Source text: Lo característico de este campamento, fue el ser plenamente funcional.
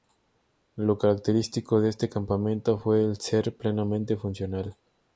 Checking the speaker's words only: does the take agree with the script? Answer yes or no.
yes